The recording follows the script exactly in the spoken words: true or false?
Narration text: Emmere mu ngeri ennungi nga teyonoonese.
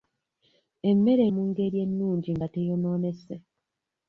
true